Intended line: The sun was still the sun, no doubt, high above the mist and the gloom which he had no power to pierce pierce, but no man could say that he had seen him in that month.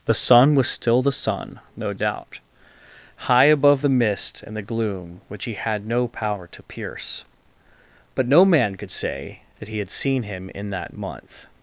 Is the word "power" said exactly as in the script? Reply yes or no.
yes